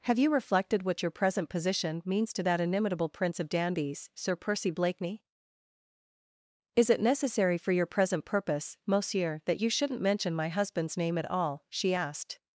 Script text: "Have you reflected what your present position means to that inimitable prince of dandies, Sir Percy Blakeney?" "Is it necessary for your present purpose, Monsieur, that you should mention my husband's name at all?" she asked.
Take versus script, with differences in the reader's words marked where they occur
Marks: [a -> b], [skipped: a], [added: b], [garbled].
"Have you reflected what your present position means to that inimitable prince of dandies, Sir Percy Blakeney?" "Is it necessary for your present purpose, Monsieur, that you [should -> shouldn't] mention my husband's name at all?" she asked.